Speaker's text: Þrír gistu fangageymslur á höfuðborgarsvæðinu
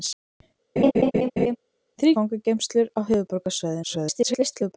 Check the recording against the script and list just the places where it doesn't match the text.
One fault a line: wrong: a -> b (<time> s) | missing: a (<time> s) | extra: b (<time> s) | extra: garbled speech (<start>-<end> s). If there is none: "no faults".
missing: gistu (2.1 s)
extra: garbled speech (3.8-4.8 s)